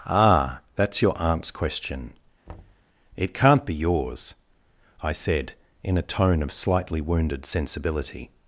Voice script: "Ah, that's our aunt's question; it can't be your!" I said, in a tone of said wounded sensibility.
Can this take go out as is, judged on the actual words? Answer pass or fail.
fail